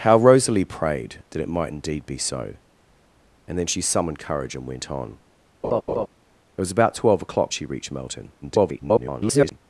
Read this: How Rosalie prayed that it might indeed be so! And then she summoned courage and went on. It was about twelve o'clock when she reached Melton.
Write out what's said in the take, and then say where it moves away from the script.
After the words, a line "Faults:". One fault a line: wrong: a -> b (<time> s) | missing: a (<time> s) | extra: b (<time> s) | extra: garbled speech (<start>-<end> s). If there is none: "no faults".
How Rosalie prayed that it might indeed be so! And then she summoned courage and went on. It was about twelve o'clock she reached Melton. [garbled]
Faults:
missing: when (7.5 s)
extra: garbled speech (8.4-9.6 s)